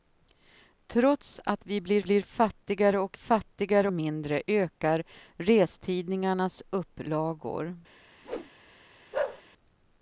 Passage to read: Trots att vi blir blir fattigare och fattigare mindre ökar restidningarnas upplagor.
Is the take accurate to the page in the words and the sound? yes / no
no